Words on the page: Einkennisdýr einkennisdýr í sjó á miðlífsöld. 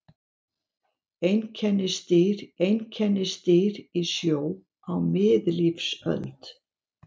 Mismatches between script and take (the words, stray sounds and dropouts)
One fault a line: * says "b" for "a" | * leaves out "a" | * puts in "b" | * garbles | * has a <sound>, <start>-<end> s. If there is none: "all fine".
all fine